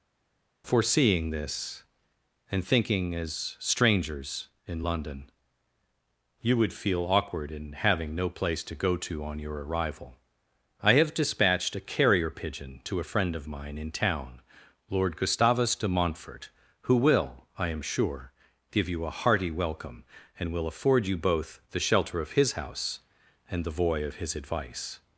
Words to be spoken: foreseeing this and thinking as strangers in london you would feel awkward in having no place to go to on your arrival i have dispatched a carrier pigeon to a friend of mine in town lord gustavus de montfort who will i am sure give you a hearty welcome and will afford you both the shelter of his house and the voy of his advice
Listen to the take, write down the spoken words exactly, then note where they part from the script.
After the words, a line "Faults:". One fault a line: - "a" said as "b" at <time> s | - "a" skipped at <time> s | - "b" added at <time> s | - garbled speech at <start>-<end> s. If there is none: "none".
foreseeing this and thinking as strangers in london you would feel awkward in having no place to go to on your arrival i have dispatched a carrier pigeon to a friend of mine in town lord gustavus de montfort who will i am sure give you a hearty welcome and will afford you both the shelter of his house and the voy of his advice
Faults:
none